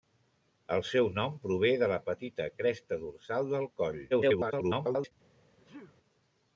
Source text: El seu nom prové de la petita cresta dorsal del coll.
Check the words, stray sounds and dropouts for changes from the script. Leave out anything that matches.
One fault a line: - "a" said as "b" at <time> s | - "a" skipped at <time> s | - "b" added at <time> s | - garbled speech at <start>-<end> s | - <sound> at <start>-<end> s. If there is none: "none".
- garbled speech at 4.1-5.1 s
- sneeze at 5.6-6.0 s